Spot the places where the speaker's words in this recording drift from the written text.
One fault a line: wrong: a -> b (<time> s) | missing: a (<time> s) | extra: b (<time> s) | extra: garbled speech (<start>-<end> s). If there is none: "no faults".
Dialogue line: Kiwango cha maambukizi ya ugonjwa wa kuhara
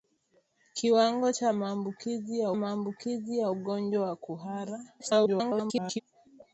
extra: maambukizi ya (2.5 s)
extra: garbled speech (5.0-6.0 s)